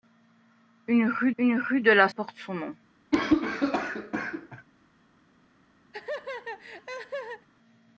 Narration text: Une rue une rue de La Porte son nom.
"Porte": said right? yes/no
yes